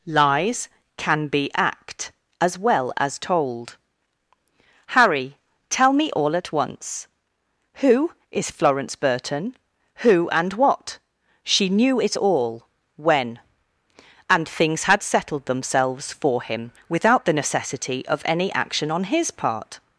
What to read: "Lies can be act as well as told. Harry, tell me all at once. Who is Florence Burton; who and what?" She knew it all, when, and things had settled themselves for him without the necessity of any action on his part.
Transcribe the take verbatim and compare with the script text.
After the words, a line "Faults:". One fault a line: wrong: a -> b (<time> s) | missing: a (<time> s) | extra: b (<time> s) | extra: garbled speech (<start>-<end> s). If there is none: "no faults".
"Lies can be act as well as told. Harry, tell me all at once. Who is Florence Burton; who and what?" She knew it all, when, and things had settled themselves for him without the necessity of any action on his part.
Faults:
no faults